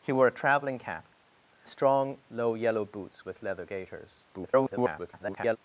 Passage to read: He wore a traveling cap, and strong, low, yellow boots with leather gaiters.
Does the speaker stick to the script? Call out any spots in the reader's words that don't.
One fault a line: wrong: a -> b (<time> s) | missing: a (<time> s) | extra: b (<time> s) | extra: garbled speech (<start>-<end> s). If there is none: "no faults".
missing: and (1.1 s)
extra: garbled speech (4.3-5.6 s)